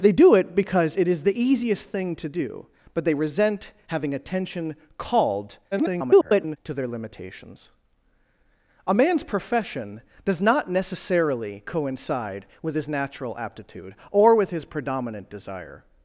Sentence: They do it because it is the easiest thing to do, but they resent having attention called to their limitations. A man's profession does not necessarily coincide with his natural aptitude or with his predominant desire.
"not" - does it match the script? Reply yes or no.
yes